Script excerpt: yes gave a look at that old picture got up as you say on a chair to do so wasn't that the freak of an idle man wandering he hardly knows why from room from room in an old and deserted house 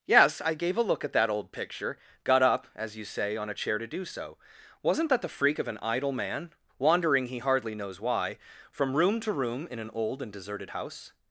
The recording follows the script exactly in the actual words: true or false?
false